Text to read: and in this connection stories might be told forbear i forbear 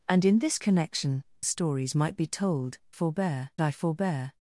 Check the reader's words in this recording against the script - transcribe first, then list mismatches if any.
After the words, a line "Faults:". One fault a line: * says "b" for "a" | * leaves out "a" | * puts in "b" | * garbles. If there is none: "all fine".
and in this connection stories might be told forbear i forbear
Faults:
all fine